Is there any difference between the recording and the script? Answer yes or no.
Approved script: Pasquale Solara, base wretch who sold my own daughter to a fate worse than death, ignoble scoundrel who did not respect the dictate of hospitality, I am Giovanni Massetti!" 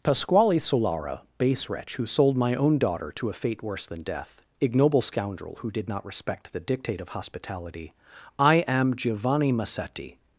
no